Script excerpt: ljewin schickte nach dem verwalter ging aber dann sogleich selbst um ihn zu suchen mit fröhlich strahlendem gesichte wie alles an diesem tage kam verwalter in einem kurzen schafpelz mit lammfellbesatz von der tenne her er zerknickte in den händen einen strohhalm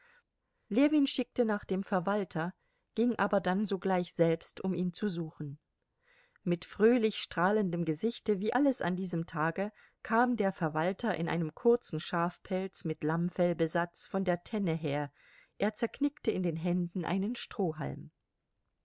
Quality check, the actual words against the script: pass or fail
fail